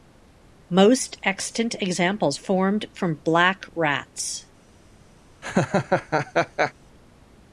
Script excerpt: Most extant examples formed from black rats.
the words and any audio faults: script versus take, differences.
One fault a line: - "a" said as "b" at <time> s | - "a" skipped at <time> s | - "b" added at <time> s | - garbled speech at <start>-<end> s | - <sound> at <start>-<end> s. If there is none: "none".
- laugh at 5.4-6.7 s